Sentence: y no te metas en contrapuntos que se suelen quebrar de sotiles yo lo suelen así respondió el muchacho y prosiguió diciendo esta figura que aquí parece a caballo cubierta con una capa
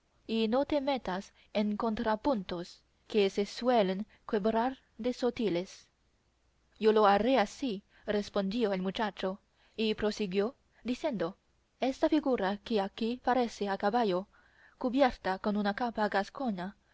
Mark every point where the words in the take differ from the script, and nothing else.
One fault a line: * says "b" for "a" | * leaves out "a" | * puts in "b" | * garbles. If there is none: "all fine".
* says "haré" for "suelen"